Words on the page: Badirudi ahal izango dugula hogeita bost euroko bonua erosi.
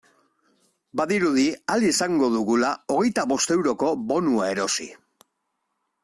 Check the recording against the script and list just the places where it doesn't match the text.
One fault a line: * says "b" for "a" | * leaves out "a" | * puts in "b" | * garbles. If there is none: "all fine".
all fine